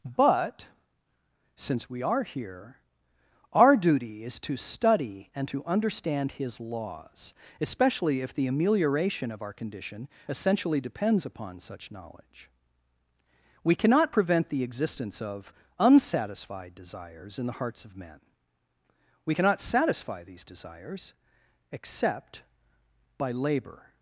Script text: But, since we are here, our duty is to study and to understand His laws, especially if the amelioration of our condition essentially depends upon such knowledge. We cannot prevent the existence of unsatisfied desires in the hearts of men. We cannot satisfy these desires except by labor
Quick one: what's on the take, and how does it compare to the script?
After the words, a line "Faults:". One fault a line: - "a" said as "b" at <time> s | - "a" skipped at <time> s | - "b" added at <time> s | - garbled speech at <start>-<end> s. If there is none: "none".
But, since we are here, our duty is to study and to understand His laws, especially if the amelioration of our condition essentially depends upon such knowledge. We cannot prevent the existence of unsatisfied desires in the hearts of men. We cannot satisfy these desires except by labor
Faults:
none